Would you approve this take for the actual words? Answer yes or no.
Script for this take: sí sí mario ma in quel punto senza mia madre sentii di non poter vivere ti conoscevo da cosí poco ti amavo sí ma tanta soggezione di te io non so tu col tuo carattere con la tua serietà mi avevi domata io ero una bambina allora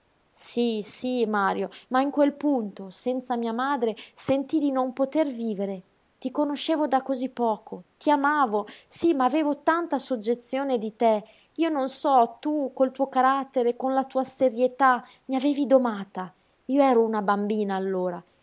no